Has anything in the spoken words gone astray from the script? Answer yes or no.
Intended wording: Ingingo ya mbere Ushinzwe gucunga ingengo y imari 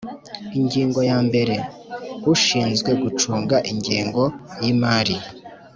no